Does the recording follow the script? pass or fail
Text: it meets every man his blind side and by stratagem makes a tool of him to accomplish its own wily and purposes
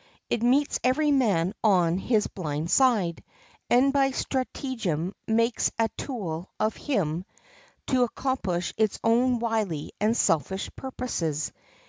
fail